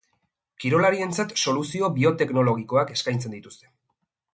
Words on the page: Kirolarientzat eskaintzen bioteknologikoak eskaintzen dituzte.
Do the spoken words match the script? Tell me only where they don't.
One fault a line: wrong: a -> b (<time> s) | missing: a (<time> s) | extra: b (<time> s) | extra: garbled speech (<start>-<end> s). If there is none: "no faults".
wrong: eskaintzen -> soluzio (1.4 s)